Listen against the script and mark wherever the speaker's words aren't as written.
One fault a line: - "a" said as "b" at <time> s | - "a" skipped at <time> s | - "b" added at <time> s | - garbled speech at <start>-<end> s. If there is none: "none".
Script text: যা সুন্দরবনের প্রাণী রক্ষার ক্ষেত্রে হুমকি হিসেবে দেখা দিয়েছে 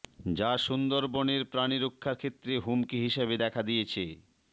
none